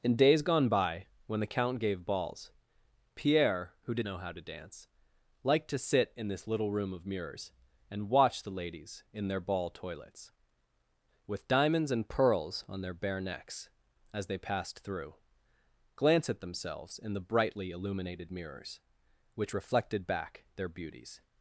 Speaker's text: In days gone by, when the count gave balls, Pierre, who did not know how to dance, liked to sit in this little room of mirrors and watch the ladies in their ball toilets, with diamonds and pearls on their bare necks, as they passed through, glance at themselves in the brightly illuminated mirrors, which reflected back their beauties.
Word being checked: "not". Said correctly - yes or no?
no